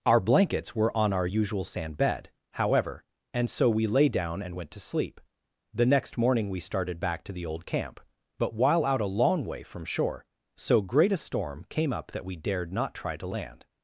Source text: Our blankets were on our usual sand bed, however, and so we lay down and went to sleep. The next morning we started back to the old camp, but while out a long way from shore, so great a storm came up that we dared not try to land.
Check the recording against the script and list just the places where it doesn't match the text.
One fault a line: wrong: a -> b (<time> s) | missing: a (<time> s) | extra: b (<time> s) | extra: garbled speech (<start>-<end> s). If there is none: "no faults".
no faults